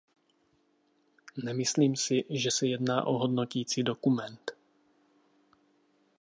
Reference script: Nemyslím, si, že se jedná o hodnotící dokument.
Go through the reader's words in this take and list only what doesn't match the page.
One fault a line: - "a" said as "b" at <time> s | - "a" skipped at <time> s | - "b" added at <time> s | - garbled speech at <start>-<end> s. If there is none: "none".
none